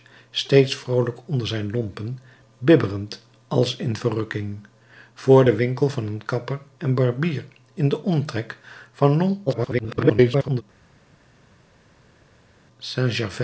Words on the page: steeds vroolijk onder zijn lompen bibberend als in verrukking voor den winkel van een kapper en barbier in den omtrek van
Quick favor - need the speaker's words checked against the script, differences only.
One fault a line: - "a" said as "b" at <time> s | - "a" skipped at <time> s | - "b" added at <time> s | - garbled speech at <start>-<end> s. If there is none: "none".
- garbled speech at 9.5-10.6 s